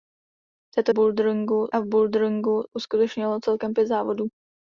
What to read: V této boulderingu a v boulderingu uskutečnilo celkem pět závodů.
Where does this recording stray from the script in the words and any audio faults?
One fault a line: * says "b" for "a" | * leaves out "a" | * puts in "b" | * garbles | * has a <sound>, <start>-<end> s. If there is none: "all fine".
all fine